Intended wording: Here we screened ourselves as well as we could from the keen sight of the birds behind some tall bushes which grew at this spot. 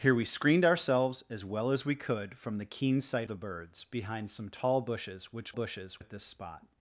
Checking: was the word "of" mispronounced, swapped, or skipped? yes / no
yes